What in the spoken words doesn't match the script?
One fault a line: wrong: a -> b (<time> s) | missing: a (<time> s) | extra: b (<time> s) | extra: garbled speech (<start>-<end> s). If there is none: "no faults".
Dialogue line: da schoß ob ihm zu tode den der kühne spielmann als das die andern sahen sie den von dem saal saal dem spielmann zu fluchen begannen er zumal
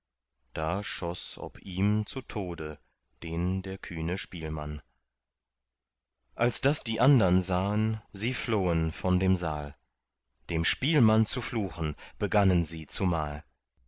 wrong: den -> flohen (8.3 s)
missing: saal (9.8 s)
wrong: er -> sie (12.6 s)